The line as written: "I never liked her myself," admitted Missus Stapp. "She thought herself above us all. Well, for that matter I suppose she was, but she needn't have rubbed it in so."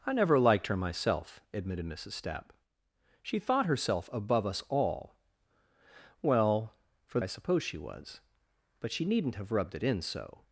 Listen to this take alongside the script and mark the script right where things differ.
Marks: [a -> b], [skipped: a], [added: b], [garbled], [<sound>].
"I never liked her myself," admitted Missus Stapp. "She thought herself above us all. Well, for [skipped: that matter] I suppose she was, but she needn't have rubbed it in so."